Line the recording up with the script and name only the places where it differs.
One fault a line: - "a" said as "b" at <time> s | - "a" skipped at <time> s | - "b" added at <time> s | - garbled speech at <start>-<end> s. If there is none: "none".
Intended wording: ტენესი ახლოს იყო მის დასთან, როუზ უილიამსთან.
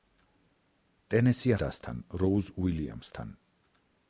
- "ახლოს იყო მის" skipped at 1.5 s